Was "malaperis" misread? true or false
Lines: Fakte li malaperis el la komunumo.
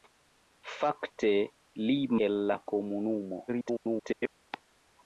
true